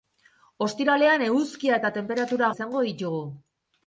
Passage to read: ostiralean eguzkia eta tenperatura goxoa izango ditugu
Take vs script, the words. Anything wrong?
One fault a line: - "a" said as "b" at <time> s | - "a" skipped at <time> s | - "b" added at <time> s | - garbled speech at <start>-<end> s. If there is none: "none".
- "goxoa" skipped at 2.5 s